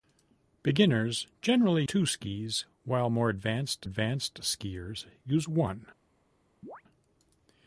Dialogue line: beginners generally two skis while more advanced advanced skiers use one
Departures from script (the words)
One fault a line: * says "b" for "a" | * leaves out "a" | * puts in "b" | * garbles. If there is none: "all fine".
all fine